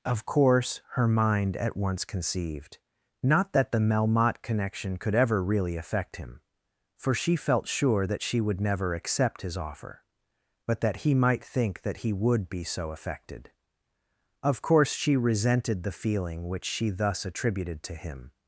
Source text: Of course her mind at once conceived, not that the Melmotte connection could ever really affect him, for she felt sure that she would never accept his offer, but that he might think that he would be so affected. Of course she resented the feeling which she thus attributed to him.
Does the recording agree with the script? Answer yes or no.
yes